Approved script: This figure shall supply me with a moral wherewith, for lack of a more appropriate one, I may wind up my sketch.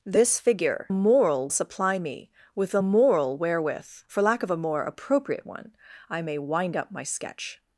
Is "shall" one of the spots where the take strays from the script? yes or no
yes